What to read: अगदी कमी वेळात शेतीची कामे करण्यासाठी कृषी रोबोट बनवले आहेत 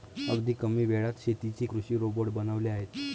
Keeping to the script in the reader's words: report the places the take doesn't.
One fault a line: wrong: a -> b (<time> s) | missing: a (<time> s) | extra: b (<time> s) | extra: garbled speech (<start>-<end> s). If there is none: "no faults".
missing: कामे करण्यासाठी (1.6 s)